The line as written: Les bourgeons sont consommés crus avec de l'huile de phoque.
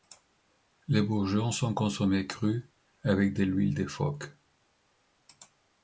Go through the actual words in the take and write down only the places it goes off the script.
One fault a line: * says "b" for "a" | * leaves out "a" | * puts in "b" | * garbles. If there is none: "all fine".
all fine